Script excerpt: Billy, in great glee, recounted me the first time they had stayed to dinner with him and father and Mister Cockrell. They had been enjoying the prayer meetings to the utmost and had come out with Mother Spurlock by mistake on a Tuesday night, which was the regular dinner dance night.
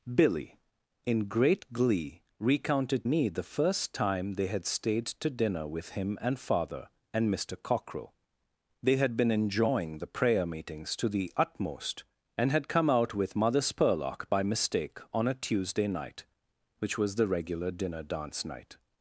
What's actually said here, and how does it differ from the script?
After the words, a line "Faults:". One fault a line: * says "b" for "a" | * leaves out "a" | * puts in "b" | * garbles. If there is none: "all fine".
Billy, in great glee, recounted me the first time they had stayed to dinner with him and father and Mister Cockrell. They had been enjoying the prayer meetings to the utmost and had come out with Mother Spurlock by mistake on a Tuesday night, which was the regular dinner dance night.
Faults:
all fine